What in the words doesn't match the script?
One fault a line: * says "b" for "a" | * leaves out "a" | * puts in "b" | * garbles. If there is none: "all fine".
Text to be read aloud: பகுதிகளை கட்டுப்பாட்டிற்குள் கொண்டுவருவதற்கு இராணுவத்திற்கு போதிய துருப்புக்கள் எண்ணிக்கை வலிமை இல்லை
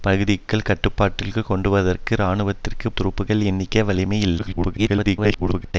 * leaves out "போதிய"
* garbles